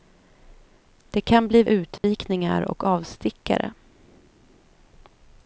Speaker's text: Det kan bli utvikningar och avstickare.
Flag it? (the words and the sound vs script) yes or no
yes